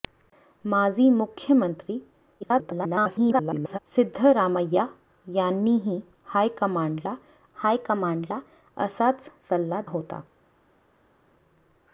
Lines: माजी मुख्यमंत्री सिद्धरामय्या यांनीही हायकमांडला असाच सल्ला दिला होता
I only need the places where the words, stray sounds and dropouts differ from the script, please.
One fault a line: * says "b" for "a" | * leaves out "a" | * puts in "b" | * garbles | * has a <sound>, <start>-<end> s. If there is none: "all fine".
* garbles
* puts in "हायकमांडला"
* leaves out "दिला"